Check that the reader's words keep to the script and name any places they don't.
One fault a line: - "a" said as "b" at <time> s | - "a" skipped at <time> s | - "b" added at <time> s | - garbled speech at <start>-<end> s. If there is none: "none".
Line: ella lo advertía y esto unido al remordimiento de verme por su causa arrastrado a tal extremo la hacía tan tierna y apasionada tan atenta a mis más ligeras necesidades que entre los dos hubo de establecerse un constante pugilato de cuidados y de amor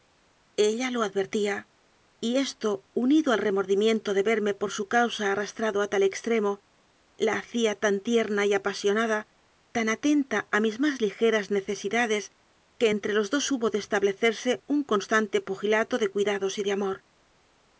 none